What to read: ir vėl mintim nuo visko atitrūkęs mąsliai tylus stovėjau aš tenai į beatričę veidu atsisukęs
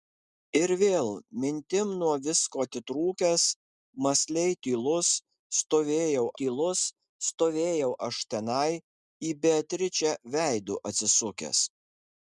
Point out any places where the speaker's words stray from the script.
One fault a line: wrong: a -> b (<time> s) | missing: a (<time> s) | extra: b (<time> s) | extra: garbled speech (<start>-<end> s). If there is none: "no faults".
extra: tylus stovėjau (6.4 s)